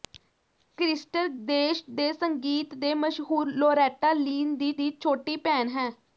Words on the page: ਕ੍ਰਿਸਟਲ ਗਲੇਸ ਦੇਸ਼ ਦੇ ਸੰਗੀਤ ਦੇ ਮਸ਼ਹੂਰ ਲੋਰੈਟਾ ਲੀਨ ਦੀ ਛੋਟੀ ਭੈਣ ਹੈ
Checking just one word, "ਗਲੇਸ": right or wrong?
wrong